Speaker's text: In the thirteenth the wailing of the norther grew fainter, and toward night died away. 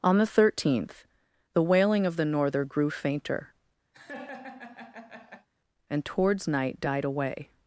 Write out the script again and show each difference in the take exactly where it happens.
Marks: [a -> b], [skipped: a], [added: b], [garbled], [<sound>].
[In -> On] the thirteenth the wailing of the norther grew fainter, [laugh] and [toward -> towards] night died away.